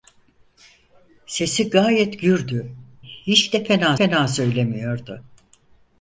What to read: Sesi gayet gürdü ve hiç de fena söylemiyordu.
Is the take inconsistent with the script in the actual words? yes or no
yes